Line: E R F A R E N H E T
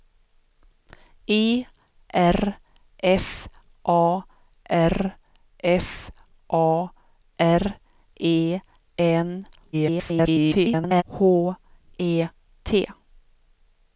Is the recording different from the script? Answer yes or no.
yes